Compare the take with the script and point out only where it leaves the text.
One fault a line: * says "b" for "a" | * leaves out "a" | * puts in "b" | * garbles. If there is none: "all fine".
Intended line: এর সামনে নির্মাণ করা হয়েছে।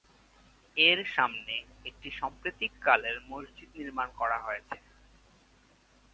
* puts in "একটি সাম্প্রতিককালের মসজিদ"